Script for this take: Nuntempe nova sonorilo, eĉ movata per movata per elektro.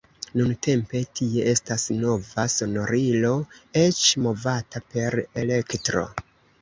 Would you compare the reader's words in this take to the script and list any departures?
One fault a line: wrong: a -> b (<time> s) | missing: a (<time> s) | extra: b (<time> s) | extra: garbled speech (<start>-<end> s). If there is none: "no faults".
extra: tie estas (1.2 s)
missing: movata per (5.2 s)